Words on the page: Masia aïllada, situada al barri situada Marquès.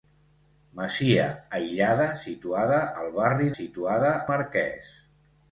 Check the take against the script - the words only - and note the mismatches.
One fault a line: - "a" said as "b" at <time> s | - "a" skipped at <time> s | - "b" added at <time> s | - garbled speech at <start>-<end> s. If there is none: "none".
none